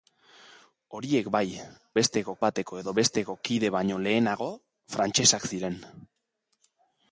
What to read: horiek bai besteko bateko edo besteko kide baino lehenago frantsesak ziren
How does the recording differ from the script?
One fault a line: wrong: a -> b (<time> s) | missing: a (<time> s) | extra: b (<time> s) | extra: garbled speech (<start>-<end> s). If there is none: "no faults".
no faults